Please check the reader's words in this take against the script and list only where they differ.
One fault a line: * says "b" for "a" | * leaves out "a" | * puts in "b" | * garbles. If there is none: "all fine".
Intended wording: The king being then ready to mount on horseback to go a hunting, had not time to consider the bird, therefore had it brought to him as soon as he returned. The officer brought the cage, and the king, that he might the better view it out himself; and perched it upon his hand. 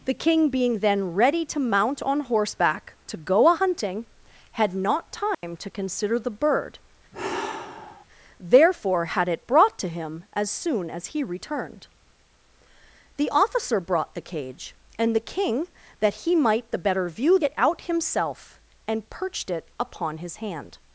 all fine